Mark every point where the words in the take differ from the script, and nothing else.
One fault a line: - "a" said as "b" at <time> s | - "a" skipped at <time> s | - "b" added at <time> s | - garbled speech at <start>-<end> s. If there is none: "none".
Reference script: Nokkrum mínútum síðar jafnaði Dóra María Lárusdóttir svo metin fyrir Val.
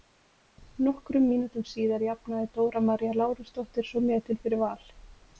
none